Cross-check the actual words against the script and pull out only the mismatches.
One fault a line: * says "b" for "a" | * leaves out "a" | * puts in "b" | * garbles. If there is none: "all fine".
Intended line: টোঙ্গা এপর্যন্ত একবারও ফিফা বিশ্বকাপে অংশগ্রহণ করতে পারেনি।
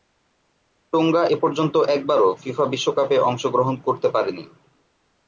all fine